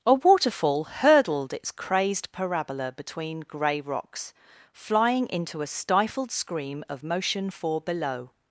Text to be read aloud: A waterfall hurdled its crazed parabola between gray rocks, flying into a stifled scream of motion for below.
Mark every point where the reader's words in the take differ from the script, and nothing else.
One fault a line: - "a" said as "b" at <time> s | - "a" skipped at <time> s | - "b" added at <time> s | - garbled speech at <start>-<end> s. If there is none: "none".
none